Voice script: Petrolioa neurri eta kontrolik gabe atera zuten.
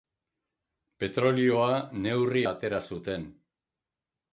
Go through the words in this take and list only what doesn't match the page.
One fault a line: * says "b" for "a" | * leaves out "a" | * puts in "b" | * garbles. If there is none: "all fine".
* leaves out "eta kontrolik gabe"